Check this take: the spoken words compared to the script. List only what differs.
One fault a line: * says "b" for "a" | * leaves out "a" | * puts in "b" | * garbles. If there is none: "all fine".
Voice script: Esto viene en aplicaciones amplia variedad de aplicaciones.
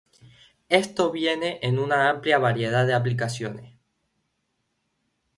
* says "una" for "aplicaciones"